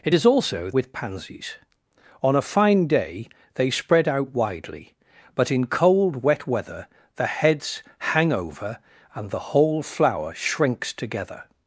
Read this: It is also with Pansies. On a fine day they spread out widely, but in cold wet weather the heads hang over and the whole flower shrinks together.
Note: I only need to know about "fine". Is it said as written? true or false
true